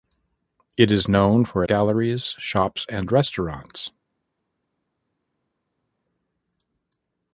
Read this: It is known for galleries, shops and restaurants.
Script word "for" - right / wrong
right